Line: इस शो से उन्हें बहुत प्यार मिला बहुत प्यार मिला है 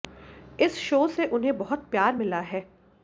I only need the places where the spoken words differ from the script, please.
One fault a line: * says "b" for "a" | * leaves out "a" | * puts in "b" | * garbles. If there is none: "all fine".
* leaves out "बहुत प्यार मिला"